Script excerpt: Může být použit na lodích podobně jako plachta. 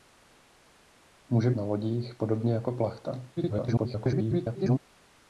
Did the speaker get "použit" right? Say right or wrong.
wrong